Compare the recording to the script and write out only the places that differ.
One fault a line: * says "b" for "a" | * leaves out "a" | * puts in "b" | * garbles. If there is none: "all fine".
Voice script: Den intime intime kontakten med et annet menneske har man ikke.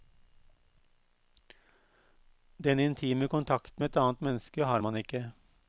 * leaves out "intime"